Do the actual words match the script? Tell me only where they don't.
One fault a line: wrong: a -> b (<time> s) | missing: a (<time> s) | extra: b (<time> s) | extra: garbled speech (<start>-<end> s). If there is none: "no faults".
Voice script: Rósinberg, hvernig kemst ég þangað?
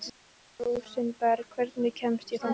no faults